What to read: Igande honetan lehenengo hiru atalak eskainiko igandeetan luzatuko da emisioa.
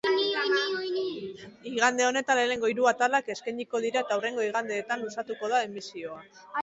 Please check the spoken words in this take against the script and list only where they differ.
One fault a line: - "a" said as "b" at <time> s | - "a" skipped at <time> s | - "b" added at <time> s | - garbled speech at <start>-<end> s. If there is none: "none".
- "dira eta hurrengo" added at 3.9 s